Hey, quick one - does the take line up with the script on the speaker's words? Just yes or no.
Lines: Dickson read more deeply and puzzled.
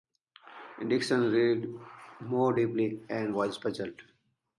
no